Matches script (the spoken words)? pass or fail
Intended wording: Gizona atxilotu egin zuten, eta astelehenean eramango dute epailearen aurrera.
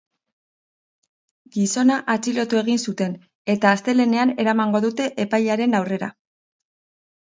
pass